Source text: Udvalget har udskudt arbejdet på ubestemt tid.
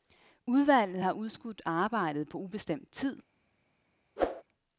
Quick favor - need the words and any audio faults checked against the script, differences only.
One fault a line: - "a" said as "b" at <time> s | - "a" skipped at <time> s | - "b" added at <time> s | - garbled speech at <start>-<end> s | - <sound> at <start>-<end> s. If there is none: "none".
- whoosh at 4.2-4.4 s